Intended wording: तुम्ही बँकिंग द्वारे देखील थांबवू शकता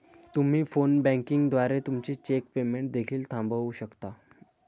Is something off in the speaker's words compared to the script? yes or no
yes